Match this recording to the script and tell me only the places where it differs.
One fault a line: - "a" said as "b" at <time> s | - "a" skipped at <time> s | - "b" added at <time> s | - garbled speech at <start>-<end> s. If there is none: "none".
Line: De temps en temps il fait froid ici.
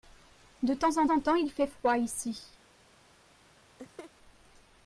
- "en" added at 1.1 s